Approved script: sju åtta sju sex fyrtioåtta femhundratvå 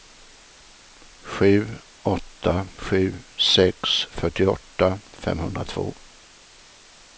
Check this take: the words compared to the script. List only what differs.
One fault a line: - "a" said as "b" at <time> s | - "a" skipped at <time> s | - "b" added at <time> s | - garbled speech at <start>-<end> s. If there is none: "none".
none